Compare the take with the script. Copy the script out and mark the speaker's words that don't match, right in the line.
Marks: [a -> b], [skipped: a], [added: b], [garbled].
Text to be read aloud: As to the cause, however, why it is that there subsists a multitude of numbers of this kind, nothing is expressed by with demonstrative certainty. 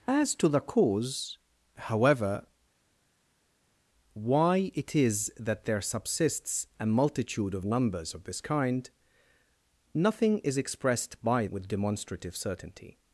As to the cause, however, why it is that there subsists a multitude of numbers of this kind, nothing is expressed by with demonstrative certainty.